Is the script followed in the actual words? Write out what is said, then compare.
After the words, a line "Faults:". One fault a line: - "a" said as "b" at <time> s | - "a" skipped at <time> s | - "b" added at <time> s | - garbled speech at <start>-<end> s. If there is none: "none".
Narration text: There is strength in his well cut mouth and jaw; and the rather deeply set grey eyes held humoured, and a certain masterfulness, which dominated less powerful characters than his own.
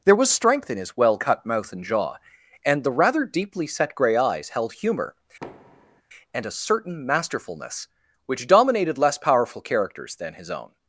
There was strength in his well cut mouth and jaw; and the rather deeply set grey eyes held humour, and a certain masterfulness, which dominated less powerful characters than his own.
Faults:
- "is" said as "was" at 0.1 s
- "humoured" said as "humour" at 4.7 s